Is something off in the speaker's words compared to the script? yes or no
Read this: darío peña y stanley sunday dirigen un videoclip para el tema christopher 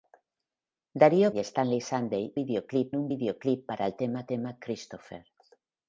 yes